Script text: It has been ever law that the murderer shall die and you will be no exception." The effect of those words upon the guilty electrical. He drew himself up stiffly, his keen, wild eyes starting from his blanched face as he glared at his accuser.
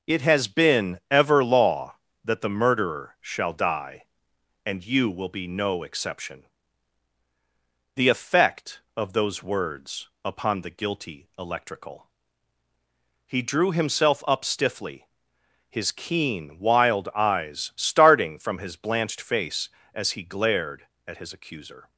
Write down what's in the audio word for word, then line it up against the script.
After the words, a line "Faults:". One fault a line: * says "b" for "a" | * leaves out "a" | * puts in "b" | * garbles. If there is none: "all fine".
It has been ever law that the murderer shall die and you will be no exception." The effect of those words upon the guilty electrical. He drew himself up stiffly, his keen, wild eyes starting from his blanched face as he glared at his accuser.
Faults:
all fine